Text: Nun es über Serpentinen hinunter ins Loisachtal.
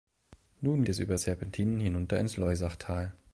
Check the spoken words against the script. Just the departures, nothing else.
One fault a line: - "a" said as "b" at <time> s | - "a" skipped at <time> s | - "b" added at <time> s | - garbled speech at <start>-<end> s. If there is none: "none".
none